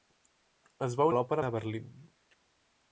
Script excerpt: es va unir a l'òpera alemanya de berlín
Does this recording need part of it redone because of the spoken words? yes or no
yes